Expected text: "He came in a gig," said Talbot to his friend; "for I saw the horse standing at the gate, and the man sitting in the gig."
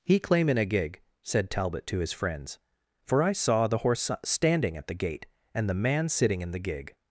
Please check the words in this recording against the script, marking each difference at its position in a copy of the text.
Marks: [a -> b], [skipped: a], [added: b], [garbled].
"He [came -> claim] in a gig," said Talbot to his [friend; -> friends] "for I saw the horse standing at the gate, and the man sitting in the gig."